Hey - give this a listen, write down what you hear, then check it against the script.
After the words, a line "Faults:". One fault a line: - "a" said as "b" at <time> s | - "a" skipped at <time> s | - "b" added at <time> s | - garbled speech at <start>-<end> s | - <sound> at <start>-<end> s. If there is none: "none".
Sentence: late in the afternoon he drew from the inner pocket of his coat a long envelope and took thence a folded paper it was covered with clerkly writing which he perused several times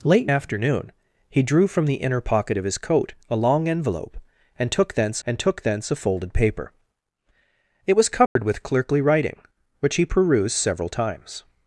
late in afternoon he drew from the inner pocket of his coat a long envelope and took thence and took thence a folded paper it was covered with clerkly writing which he perused several times
Faults:
- "the" skipped at 0.3 s
- "and took thence" added at 5.3 s
- dropout at 8.3-8.4 s